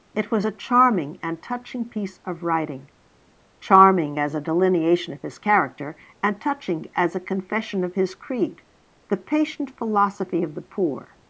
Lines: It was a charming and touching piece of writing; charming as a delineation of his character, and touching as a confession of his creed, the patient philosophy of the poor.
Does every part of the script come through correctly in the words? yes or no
yes